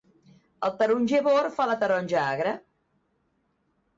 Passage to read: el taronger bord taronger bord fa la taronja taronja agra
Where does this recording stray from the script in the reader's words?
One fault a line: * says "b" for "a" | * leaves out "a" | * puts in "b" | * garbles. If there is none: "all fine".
* leaves out "taronger bord"
* leaves out "taronja"